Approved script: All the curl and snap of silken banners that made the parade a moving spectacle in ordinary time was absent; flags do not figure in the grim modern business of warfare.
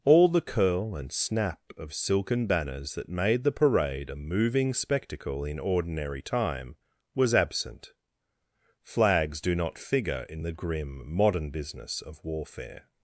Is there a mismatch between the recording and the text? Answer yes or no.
no